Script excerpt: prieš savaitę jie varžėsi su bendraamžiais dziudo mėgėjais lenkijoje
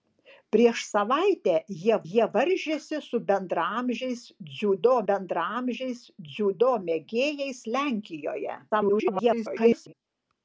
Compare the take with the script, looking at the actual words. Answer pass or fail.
fail